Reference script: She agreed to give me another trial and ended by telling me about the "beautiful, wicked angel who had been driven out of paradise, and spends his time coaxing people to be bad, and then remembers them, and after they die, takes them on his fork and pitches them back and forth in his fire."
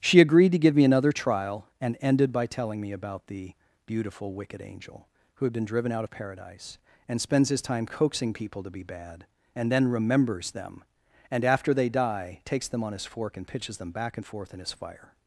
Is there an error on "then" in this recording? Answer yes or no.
no